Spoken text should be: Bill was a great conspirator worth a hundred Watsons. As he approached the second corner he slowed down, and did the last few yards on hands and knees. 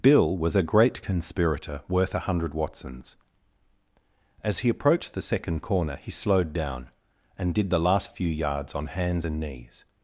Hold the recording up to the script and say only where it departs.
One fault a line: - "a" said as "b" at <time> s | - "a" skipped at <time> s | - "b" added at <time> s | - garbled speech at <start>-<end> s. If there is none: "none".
none